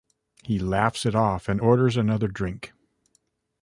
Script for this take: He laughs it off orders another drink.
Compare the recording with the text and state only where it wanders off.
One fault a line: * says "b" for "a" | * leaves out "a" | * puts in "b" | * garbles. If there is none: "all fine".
* puts in "and"